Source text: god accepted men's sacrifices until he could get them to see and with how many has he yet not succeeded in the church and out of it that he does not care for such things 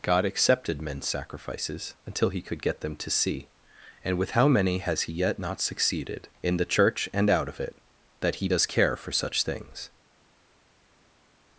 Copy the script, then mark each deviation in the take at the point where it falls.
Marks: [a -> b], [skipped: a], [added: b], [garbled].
god accepted men's sacrifices until he could get them to see and with how many has he yet not succeeded in the church and out of it that he does [skipped: not] care for such things